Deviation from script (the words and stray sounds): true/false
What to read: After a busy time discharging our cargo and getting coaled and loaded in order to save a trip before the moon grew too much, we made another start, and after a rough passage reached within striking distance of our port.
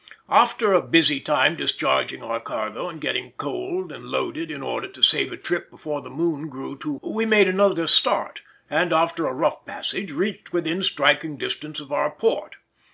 true